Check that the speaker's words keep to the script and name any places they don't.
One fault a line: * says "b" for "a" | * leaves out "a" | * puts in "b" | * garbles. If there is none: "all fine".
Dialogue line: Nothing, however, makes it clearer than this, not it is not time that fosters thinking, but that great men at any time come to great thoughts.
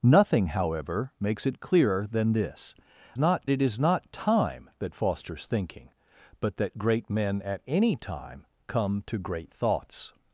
all fine